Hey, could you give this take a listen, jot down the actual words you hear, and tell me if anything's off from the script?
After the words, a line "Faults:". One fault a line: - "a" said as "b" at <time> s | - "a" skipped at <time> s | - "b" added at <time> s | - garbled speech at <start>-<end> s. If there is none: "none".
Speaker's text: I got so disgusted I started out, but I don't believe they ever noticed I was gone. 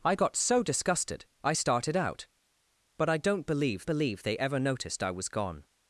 I got so disgusted I started out, but I don't believe believe they ever noticed I was gone.
Faults:
- "believe" added at 3.8 s